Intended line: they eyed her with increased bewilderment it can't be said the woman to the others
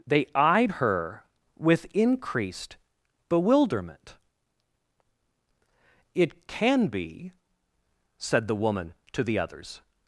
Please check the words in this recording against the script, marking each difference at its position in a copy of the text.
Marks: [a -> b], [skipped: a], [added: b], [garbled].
they eyed her with increased bewilderment it [can't -> can] be said the woman to the others